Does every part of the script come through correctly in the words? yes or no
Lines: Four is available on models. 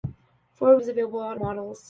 yes